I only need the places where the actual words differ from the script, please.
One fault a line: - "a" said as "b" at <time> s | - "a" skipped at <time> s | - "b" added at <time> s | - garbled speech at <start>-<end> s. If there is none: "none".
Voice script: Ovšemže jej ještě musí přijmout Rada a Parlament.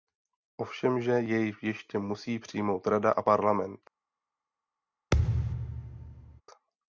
none